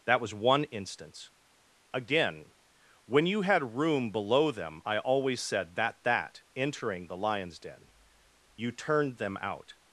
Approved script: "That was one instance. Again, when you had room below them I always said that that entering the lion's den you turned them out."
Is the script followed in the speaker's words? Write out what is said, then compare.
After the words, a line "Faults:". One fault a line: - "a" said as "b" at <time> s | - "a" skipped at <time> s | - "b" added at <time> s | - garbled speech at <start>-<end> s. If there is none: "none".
"That was one instance. Again, when you had room below them I always said that that entering the lion's den you turned them out."
Faults:
none